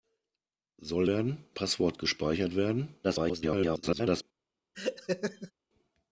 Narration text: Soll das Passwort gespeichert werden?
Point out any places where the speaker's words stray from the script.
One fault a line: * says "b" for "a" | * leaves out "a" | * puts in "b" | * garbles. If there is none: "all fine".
* says "werden" for "das"
* garbles